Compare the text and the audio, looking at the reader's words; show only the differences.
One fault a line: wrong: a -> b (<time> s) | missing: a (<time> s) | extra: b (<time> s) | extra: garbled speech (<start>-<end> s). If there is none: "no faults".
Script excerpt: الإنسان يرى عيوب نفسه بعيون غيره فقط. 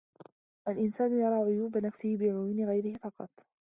no faults